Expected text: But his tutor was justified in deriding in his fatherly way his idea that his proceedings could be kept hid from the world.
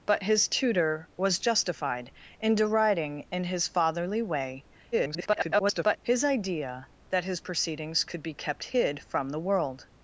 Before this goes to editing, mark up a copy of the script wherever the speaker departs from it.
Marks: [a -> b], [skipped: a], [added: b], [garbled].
But his tutor was justified in deriding in his fatherly way [garbled] his idea that his proceedings could be kept hid from the world.